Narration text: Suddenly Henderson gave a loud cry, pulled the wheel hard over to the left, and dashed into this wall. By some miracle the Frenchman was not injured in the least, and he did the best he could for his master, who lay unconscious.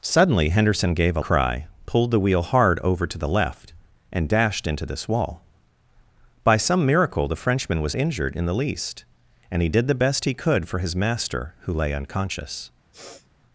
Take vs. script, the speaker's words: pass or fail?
fail